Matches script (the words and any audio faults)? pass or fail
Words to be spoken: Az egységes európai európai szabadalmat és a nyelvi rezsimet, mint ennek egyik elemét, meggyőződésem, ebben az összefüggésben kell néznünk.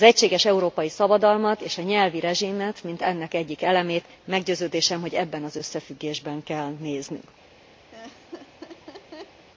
fail